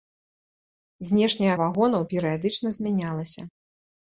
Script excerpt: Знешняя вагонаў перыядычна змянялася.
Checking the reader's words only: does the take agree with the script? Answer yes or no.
yes